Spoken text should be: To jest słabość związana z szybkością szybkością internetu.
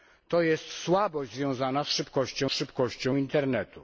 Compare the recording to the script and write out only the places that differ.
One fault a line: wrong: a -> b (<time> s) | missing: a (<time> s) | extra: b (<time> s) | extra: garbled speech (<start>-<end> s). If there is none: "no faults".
no faults